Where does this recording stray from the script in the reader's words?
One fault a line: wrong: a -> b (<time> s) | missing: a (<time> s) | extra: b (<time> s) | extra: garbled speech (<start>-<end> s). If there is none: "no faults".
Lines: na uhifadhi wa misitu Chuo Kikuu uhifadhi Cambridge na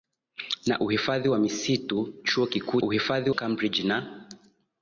no faults